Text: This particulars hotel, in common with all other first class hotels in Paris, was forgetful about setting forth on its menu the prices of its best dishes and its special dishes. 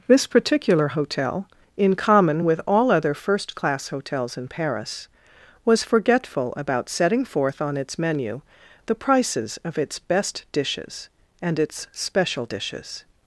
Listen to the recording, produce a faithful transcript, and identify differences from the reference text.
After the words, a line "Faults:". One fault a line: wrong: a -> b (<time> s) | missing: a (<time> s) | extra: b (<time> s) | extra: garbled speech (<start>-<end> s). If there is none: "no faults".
This particular hotel, in common with all other first class hotels in Paris, was forgetful about setting forth on its menu the prices of its best dishes and its special dishes.
Faults:
wrong: particulars -> particular (0.3 s)